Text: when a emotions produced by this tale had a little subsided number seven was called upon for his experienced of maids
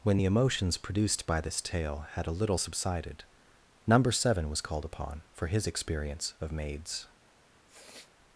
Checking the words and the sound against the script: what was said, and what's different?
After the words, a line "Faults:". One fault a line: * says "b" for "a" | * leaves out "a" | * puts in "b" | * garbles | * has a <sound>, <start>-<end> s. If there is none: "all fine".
when the emotions produced by this tale had a little subsided number seven was called upon for his experience of maids
Faults:
* says "the" for "a"
* says "experience" for "experienced"
* has a sniff, 7.7-8.1 s